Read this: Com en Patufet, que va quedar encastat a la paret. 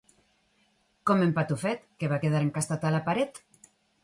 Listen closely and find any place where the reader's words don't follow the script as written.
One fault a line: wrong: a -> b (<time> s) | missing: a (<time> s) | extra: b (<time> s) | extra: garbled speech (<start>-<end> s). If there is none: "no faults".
no faults